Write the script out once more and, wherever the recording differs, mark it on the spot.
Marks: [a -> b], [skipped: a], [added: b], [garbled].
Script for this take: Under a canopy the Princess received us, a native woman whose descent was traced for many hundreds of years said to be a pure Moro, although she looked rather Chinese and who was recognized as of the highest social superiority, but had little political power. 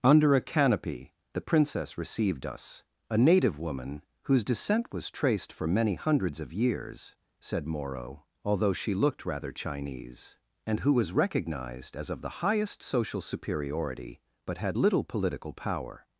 Under a canopy the Princess received us, a native woman whose descent was traced for many hundreds of years said [skipped: to be a pure] Moro, although she looked rather Chinese and who was recognized as of the highest social superiority, but had little political power.